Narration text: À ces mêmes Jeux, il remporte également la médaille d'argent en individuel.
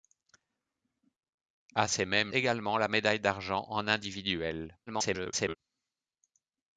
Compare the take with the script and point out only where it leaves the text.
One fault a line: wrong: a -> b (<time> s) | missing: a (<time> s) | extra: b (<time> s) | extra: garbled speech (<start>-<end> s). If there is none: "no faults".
missing: Jeux il remporte (2.3 s)
extra: garbled speech (4.9-5.6 s)